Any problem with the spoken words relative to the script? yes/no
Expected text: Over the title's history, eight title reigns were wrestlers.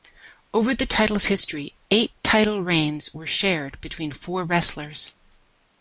yes